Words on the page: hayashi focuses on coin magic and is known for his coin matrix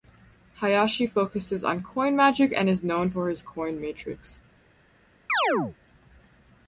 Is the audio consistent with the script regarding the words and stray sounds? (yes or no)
no